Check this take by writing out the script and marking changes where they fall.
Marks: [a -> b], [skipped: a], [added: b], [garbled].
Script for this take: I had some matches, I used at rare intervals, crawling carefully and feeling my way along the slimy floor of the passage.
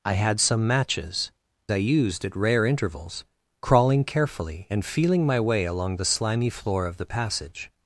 I had some matches, I used at rare intervals, crawling carefully and feeling my way along the slimy floor of the passage.